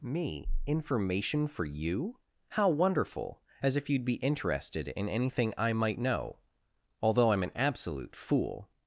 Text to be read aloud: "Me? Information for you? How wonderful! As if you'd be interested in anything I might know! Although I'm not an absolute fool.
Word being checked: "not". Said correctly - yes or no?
no